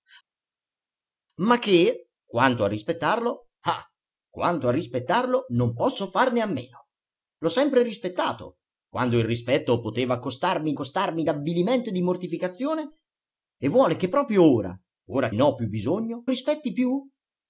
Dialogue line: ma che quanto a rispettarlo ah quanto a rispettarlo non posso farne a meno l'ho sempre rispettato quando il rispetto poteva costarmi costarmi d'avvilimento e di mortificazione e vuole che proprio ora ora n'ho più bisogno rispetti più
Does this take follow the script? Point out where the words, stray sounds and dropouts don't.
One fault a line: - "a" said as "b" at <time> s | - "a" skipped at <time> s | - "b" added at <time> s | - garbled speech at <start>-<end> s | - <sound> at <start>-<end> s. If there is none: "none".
none